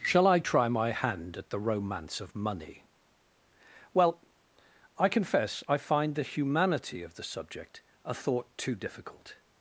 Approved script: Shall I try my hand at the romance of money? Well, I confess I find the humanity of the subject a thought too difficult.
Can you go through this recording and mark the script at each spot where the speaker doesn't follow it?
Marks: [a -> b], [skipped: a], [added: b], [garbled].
Shall I try my hand at the romance of money? Well, I confess I find the humanity of the subject a thought too difficult.